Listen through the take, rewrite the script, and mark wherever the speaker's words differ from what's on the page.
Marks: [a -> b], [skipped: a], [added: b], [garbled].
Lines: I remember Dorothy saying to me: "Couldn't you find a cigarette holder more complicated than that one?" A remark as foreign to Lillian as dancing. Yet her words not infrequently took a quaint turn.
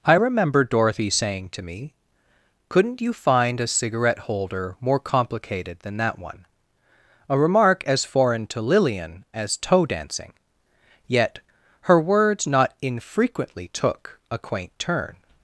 I remember Dorothy saying to me: "Couldn't you find a cigarette holder more complicated than that one?" A remark as foreign to Lillian as [added: toe] dancing. Yet her words not infrequently took a quaint turn.